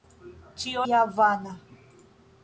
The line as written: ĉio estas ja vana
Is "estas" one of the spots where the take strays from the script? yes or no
yes